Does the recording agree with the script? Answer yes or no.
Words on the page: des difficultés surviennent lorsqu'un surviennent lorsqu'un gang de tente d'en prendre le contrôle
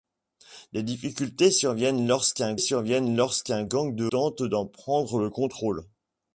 yes